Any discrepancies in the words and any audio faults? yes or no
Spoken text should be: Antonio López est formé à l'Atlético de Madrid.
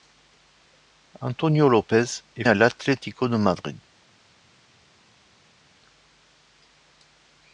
yes